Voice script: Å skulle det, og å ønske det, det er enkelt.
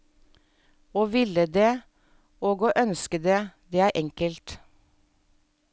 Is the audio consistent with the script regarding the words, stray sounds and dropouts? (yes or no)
no